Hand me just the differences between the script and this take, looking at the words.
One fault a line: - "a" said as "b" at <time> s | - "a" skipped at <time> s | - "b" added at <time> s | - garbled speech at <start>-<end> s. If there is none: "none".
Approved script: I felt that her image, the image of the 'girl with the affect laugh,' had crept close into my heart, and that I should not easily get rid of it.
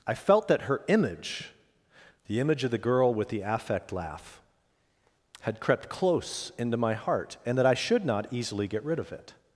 none